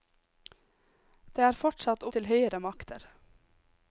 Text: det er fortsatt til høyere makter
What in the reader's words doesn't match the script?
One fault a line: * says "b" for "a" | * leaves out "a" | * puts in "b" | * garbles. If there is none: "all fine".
all fine